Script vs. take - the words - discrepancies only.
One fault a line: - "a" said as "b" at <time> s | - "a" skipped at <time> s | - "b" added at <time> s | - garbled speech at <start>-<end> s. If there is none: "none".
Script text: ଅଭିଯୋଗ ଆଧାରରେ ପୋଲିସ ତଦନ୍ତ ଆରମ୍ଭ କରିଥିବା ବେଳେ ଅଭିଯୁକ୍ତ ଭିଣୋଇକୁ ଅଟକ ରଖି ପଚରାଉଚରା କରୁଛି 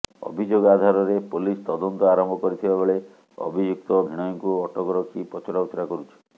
none